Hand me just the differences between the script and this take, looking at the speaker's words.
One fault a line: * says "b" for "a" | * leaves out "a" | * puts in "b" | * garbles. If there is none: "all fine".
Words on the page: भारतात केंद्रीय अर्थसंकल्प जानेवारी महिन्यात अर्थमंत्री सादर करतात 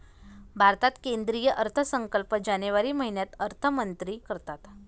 * leaves out "सादर"